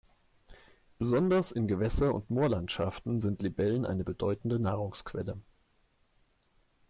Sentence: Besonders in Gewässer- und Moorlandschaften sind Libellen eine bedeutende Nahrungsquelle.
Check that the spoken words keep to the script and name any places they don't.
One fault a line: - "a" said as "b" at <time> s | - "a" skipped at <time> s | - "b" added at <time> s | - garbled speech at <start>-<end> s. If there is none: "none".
none